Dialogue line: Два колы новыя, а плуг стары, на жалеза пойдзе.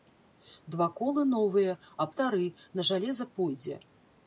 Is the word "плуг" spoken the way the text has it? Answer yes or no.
no